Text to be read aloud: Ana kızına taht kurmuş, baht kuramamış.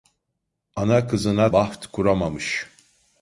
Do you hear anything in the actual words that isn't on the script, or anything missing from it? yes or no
yes